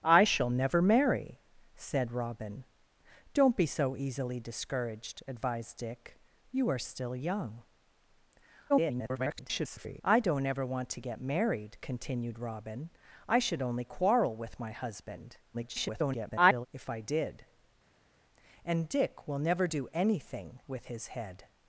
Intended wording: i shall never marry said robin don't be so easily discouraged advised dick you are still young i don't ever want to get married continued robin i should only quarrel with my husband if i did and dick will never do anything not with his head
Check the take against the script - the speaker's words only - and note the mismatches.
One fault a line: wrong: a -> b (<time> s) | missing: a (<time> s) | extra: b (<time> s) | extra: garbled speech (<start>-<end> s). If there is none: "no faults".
extra: garbled speech (8.7-10.0 s)
extra: garbled speech (15.5-16.7 s)
missing: not (20.6 s)